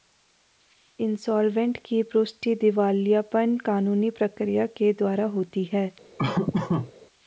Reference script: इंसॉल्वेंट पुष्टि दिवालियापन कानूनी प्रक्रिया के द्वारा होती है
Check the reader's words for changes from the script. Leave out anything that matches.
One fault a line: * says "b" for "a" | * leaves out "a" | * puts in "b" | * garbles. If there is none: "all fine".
* puts in "की"